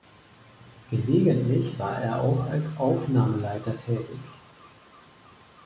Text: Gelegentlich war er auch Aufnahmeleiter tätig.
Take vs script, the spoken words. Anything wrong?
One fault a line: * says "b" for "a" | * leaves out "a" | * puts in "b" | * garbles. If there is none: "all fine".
* puts in "als"